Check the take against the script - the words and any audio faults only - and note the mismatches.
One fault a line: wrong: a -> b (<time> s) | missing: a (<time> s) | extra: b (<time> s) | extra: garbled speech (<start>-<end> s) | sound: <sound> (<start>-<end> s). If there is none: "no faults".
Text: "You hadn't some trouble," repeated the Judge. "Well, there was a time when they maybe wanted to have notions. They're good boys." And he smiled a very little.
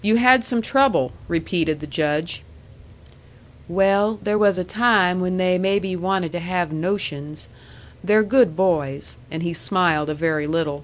wrong: hadn't -> had (0.1 s)